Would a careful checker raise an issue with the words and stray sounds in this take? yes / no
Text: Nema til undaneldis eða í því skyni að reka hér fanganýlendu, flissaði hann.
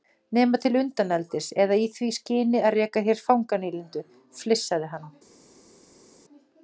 no